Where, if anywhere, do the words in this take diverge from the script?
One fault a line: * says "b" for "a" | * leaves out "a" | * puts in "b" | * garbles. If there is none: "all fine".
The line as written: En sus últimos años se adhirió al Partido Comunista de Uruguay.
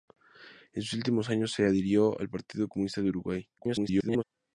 * garbles